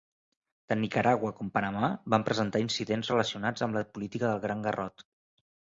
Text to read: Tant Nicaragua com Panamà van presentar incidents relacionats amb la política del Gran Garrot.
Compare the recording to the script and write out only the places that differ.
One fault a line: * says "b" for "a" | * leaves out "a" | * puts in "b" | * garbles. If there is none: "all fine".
all fine